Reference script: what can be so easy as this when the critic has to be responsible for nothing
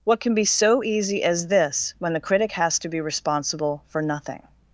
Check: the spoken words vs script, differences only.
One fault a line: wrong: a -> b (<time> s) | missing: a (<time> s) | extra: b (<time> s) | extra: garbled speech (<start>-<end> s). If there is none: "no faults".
no faults